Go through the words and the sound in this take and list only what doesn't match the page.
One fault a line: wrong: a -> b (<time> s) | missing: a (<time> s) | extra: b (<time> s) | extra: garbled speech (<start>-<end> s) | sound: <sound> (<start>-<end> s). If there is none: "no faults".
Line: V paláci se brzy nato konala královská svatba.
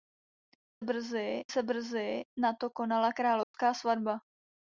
wrong: paláci -> brzy (0.8 s)
sound: dropout (3.4-3.5 s)